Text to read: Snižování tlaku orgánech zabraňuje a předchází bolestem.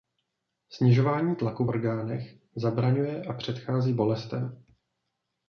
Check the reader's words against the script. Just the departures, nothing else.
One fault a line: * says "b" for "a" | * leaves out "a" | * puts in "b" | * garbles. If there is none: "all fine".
all fine